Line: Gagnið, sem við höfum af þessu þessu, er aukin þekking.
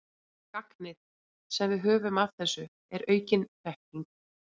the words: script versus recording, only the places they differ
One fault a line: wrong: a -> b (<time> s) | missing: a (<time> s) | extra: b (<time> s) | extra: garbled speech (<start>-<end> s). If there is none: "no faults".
missing: þessu (2.7 s)